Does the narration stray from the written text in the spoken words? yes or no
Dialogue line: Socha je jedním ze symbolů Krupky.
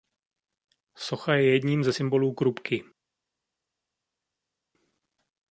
no